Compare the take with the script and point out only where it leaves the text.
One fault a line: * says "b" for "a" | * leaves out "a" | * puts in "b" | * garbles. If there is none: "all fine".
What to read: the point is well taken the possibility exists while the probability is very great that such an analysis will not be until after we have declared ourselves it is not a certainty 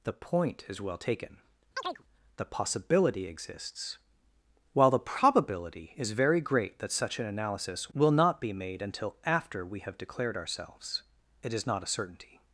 * puts in "made"